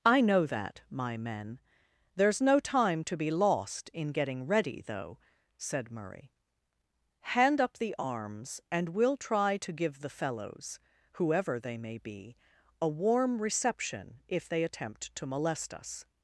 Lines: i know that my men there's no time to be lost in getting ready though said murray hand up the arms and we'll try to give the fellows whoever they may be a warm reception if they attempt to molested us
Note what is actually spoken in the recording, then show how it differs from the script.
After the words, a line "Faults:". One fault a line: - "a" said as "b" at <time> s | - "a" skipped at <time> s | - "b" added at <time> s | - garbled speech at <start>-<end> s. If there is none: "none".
i know that my men there's no time to be lost in getting ready though said murray hand up the arms and we'll try to give the fellows whoever they may be a warm reception if they attempt to molest us
Faults:
- "molested" said as "molest" at 15.3 s